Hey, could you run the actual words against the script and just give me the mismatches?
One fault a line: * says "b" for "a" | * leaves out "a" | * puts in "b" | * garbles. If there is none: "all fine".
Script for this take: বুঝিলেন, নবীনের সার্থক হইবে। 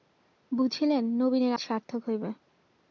all fine